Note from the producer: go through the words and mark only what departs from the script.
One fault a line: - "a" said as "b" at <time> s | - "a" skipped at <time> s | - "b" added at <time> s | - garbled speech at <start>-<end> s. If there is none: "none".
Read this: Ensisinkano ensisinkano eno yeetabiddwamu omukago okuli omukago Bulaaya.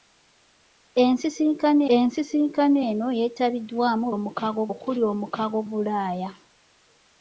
none